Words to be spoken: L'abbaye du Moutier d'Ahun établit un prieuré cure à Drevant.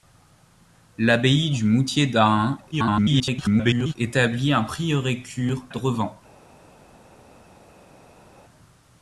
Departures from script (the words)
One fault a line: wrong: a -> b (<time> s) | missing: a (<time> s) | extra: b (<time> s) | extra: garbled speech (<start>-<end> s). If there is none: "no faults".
extra: garbled speech (2.7-3.9 s)
missing: à (5.6 s)